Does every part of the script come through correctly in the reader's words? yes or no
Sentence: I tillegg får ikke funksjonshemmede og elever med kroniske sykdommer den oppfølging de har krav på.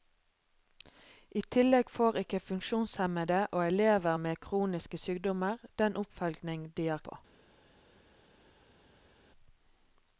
no